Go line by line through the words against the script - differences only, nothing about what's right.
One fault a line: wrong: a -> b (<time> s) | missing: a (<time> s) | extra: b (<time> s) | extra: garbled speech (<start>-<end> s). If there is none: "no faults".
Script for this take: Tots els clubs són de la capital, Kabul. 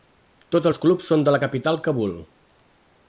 no faults